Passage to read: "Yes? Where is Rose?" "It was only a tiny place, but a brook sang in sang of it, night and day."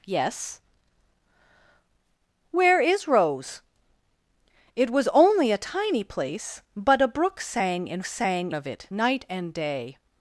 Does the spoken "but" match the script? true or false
true